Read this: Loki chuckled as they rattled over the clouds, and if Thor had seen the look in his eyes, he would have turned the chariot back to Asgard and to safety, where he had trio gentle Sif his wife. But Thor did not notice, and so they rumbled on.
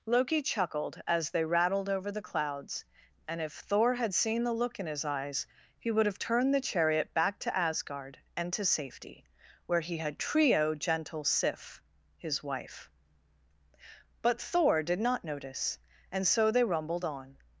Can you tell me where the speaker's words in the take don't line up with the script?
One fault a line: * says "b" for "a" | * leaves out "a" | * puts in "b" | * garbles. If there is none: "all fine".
all fine